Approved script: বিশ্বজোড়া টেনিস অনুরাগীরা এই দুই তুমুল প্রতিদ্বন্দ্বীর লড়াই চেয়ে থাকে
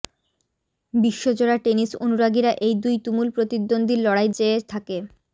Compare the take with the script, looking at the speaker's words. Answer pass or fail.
pass